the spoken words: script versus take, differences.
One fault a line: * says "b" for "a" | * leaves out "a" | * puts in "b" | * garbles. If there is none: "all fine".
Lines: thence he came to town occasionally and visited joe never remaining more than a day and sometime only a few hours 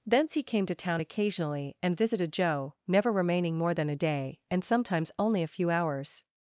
* says "sometimes" for "sometime"